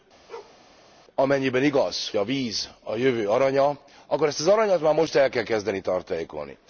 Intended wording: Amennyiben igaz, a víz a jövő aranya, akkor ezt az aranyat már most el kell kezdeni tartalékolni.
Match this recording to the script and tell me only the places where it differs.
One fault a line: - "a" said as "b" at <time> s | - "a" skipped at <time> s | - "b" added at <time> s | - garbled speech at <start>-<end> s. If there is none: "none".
none